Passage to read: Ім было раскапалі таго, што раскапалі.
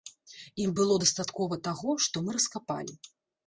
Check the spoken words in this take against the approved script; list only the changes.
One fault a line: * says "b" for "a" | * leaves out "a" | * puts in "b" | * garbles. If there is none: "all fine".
* says "дастаткова" for "раскапалі"
* puts in "мы"